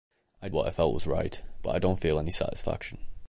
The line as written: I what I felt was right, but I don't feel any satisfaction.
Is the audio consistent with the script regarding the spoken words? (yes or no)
yes